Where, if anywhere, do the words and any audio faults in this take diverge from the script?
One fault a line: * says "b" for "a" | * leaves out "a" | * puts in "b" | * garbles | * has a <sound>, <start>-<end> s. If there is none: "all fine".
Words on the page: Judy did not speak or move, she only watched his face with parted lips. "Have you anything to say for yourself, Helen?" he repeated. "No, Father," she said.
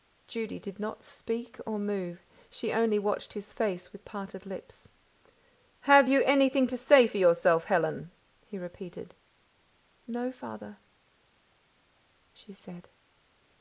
all fine